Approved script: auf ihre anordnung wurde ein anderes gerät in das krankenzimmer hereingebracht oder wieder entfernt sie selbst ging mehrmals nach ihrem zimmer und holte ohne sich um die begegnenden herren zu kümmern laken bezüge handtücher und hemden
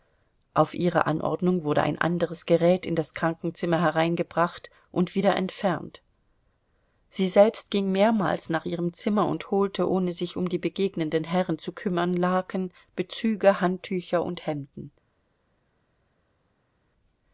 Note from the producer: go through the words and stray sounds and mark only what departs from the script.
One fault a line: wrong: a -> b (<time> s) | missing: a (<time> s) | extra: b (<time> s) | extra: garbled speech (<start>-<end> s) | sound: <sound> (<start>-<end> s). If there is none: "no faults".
wrong: oder -> und (4.9 s)